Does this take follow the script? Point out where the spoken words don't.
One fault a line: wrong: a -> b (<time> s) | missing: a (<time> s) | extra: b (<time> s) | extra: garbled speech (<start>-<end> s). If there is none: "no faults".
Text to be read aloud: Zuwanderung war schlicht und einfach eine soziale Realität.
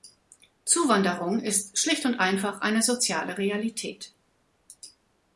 wrong: war -> ist (1.4 s)